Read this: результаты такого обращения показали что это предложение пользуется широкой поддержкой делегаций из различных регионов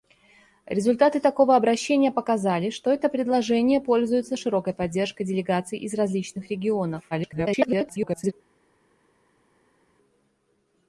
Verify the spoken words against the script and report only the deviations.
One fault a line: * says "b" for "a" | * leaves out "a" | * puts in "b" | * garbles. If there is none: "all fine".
* garbles